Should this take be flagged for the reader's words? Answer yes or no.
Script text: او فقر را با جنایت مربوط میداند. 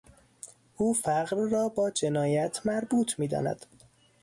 no